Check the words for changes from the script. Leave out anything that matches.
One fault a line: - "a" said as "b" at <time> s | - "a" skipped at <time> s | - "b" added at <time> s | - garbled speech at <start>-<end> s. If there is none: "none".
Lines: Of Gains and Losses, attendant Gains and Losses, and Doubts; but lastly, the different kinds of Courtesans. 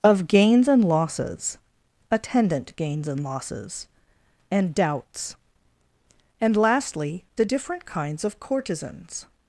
- "but" said as "and" at 6.4 s